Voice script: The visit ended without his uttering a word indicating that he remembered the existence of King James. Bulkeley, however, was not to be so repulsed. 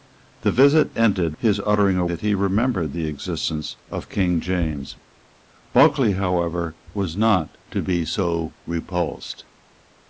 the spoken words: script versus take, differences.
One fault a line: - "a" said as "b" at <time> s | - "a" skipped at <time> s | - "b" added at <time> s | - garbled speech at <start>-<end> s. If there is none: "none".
- "without" skipped at 1.4 s
- "word indicating" skipped at 2.0 s